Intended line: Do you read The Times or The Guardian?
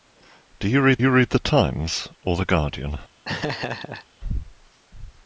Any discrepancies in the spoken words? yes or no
yes